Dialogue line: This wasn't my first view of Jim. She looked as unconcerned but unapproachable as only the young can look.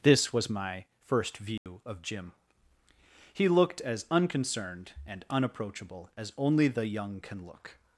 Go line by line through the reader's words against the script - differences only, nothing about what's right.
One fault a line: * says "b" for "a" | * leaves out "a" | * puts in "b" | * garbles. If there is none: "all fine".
* says "was" for "wasn't"
* says "He" for "She"
* says "and" for "but"